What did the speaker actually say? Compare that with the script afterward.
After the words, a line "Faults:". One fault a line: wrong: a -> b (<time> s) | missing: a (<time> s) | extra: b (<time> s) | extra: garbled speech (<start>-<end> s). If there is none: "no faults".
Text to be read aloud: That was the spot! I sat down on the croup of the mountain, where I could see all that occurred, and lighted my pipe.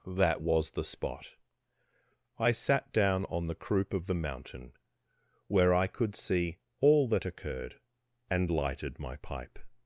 That was the spot! I sat down on the croup of the mountain, where I could see all that occurred, and lighted my pipe.
Faults:
no faults